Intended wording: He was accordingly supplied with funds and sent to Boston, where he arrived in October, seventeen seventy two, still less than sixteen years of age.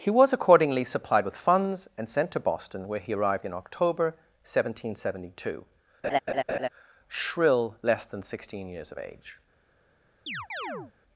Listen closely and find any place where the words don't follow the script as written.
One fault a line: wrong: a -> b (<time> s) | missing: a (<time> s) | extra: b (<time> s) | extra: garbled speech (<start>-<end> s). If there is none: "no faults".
wrong: still -> shrill (7.1 s)